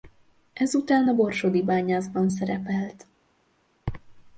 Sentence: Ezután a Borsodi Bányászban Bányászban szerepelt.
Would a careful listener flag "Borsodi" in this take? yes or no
no